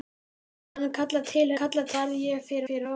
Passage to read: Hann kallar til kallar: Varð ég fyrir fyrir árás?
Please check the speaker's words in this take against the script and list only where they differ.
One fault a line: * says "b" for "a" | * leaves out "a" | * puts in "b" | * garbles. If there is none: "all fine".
all fine